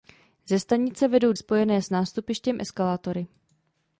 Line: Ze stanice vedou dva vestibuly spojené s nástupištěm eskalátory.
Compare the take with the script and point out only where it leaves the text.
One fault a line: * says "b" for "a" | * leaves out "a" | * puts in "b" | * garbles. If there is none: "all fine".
* leaves out "dva vestibuly"